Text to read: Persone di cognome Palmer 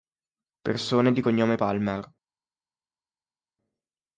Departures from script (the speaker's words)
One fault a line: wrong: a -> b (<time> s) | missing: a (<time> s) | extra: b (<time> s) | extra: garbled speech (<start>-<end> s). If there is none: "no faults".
no faults